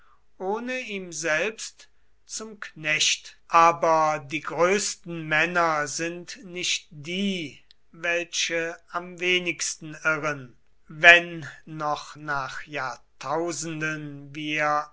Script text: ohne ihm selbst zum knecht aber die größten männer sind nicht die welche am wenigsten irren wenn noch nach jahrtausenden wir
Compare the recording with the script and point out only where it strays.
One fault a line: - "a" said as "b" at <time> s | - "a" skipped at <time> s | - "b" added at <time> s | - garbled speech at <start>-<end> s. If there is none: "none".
none